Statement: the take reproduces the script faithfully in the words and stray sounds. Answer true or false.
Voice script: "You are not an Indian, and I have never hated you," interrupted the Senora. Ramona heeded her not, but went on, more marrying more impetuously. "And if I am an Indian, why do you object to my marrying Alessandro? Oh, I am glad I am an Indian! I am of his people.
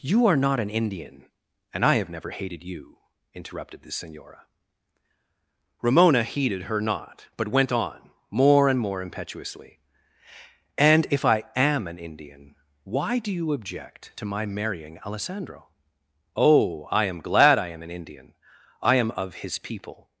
false